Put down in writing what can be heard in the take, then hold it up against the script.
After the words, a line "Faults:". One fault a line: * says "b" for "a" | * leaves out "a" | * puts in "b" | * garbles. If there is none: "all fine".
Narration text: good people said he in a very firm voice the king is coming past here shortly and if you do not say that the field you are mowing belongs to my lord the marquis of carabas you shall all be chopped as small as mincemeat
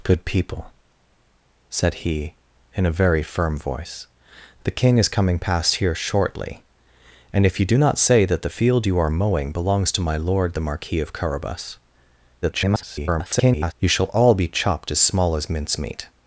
good people said he in a very firm voice the king is coming past here shortly and if you do not say that the field you are mowing belongs to my lord the marquis of carabas [garbled] you shall all be chopped as small as mincemeat
Faults:
* garbles